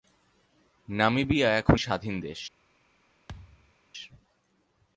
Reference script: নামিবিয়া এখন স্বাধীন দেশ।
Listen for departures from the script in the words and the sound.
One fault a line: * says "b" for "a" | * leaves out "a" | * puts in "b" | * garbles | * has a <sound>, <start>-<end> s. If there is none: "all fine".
* has a thud, 3.3-3.7 s